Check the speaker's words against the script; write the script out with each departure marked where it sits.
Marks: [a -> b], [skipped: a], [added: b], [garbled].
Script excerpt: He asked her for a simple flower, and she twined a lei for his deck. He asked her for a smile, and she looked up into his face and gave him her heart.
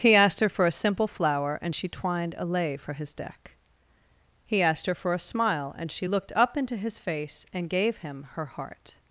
He asked her for a simple flower, and she twined a lei for his deck. He asked her for a smile, and she looked up into his face and gave him her heart.